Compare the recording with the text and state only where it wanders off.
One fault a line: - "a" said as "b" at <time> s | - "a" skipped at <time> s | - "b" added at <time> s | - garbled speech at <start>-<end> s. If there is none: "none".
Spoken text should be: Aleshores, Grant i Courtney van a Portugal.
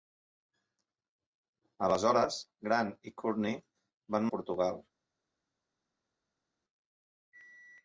none